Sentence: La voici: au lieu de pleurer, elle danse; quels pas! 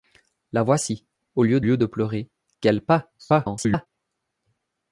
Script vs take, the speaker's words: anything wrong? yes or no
yes